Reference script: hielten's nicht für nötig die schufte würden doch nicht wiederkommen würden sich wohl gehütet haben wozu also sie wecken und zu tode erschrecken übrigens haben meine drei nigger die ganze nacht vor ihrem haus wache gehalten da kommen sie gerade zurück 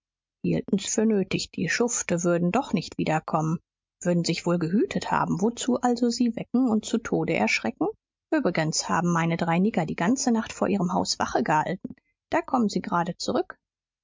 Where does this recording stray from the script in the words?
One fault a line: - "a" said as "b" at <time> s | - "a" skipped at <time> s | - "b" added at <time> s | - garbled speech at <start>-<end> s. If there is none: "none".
- "nicht" skipped at 0.9 s